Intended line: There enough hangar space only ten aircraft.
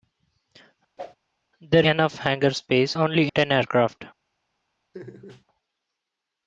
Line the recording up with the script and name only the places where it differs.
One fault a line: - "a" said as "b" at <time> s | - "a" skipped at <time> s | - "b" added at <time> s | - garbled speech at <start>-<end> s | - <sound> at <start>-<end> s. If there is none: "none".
- whoosh at 1.0-1.2 s
- laugh at 4.9-5.4 s